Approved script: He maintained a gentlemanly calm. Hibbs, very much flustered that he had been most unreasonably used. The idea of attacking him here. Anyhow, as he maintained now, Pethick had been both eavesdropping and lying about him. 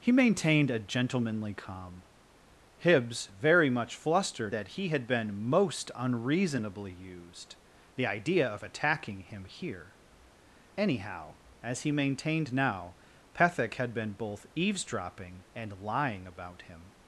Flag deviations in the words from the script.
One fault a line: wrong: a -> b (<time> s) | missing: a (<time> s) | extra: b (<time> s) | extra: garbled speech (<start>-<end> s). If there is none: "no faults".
no faults